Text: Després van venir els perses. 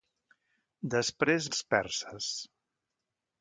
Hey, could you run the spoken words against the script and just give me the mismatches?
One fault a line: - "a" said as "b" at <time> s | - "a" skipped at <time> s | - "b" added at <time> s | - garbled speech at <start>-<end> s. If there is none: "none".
- "van venir" skipped at 1.5 s